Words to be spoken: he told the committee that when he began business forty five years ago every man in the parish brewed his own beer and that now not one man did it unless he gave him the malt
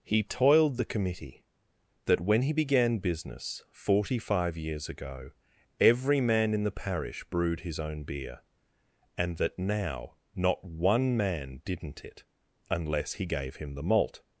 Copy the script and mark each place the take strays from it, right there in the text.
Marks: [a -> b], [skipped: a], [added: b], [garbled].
he [told -> toiled] the committee that when he began business forty five years ago every man in the parish brewed his own beer and that now not one man [did -> didn't] it unless he gave him the malt